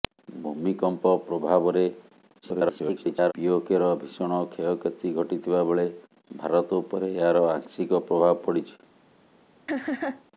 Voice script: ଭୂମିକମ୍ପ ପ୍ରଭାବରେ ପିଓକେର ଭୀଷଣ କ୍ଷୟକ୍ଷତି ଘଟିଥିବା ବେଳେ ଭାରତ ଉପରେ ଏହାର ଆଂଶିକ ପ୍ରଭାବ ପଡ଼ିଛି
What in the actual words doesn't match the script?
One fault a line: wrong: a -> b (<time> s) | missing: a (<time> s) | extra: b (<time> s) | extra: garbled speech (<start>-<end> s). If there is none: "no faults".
extra: garbled speech (2.4-3.3 s)